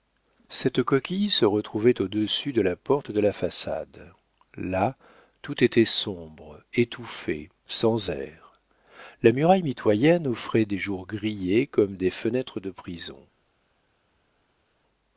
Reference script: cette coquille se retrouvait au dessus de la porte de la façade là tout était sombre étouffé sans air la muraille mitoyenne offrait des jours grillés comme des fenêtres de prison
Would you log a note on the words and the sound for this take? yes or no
no